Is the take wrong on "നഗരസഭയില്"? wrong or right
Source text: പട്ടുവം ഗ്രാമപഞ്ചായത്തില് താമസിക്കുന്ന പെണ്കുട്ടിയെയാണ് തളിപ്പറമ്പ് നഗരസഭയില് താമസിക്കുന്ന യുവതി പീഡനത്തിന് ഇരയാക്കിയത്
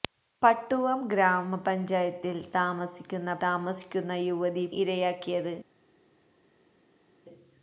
wrong